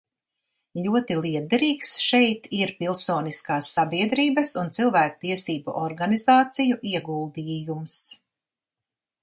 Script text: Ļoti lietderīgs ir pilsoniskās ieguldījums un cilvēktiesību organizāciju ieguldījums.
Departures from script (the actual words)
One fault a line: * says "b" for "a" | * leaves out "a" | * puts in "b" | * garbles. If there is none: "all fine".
* puts in "šeit"
* says "sabiedrības" for "ieguldījums"